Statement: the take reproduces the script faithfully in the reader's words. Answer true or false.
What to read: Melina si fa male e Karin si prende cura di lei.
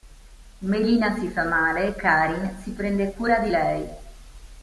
true